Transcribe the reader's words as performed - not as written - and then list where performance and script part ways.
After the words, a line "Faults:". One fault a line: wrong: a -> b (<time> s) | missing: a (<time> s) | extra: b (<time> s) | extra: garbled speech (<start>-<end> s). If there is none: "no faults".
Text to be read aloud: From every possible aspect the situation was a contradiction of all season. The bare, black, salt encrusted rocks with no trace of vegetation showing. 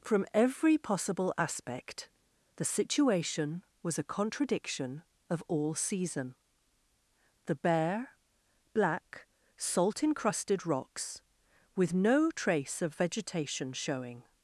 From every possible aspect the situation was a contradiction of all season. The bare, black, salt encrusted rocks with no trace of vegetation showing.
Faults:
no faults